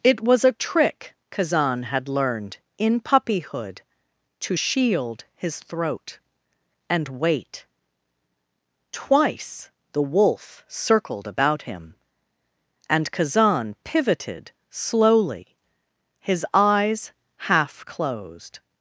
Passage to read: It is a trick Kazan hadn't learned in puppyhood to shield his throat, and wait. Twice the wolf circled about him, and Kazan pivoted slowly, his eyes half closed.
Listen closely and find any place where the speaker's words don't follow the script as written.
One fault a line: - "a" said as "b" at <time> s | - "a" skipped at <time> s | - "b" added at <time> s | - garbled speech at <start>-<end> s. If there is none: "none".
- "is" said as "was" at 0.2 s
- "hadn't" said as "had" at 1.8 s